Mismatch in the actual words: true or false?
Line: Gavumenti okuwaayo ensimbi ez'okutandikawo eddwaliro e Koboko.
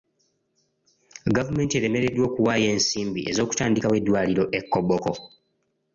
true